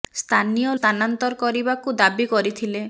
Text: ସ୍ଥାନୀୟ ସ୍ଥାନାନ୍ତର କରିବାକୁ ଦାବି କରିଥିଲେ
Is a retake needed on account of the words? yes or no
no